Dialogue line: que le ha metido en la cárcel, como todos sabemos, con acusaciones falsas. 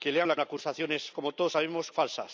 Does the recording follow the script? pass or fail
fail